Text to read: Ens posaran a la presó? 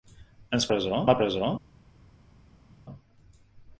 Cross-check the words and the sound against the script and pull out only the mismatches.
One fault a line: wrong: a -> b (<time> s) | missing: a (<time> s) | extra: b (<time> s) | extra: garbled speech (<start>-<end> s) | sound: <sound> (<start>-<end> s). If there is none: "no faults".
wrong: posaran -> presó (0.7 s)